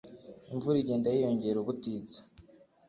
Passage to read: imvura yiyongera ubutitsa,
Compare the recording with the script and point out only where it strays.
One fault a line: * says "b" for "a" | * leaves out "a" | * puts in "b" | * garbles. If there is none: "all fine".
* puts in "igenda"